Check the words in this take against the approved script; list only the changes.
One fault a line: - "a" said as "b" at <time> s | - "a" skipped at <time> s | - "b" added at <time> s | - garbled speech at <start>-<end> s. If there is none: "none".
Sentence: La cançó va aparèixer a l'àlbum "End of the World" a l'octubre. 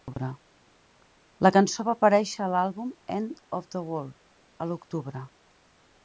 none